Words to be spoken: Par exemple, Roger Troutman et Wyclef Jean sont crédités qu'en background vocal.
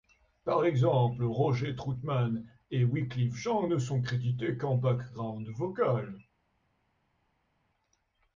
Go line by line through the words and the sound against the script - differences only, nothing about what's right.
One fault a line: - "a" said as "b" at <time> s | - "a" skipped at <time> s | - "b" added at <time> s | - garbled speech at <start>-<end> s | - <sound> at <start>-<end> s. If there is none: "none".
- "ne" added at 3.7 s